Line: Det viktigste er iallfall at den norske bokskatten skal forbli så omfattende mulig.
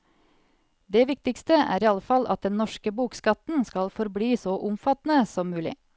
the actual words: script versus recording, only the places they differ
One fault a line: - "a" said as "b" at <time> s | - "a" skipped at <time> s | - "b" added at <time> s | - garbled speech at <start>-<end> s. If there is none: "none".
- "som" added at 5.4 s